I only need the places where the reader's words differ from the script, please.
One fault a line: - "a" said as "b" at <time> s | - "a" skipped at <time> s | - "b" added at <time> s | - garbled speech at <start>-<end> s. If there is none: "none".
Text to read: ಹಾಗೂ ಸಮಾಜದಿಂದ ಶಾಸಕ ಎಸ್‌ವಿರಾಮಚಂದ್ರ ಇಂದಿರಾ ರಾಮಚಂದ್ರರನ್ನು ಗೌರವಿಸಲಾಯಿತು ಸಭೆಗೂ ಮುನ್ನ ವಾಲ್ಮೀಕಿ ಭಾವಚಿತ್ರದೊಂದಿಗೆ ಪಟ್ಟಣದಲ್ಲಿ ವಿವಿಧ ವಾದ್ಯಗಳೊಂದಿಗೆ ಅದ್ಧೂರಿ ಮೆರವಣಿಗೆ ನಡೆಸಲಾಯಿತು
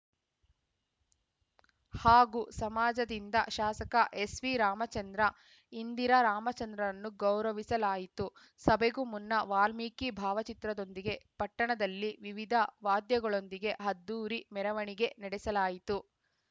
none